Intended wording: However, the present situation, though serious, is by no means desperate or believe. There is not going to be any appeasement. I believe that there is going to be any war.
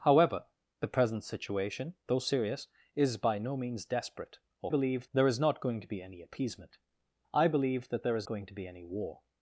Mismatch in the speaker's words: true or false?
false